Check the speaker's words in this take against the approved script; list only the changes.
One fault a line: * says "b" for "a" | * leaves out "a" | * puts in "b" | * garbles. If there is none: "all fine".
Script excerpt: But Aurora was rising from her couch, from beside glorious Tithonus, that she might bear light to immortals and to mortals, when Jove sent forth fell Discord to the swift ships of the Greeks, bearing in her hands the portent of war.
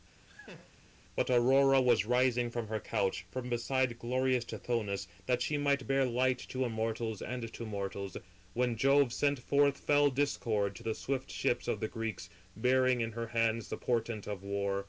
all fine